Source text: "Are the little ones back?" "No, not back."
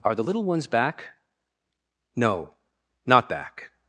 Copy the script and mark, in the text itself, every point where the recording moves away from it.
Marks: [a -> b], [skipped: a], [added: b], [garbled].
"Are the little ones back?" "No, not back."